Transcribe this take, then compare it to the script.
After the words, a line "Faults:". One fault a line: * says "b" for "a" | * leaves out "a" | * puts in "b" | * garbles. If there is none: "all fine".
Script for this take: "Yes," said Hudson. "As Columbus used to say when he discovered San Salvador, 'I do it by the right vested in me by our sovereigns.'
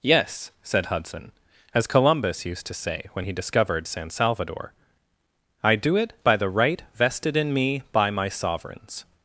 "Yes," said Hudson. "As Columbus used to say when he discovered San Salvador, 'I do it by the right vested in me by my sovereigns.'
Faults:
* says "my" for "our"